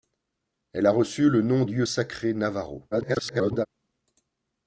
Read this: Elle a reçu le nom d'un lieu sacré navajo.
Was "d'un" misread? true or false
true